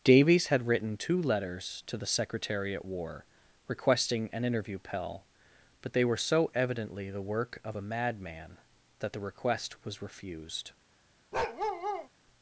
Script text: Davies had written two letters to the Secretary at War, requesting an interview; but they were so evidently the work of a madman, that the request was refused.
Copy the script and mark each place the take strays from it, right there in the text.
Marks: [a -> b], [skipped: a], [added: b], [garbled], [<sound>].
Davies had written two letters to the Secretary at War, requesting an interview; [added: pell] but they were so evidently the work of a madman, that the request was refused. [bark]